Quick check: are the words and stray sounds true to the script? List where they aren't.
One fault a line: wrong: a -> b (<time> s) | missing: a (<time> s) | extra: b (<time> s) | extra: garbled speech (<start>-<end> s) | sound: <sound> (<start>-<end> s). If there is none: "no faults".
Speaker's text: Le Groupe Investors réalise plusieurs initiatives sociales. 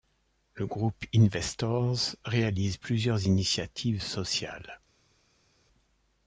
no faults